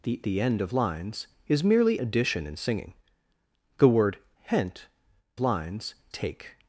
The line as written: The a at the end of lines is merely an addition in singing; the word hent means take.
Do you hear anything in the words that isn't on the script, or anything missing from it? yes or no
yes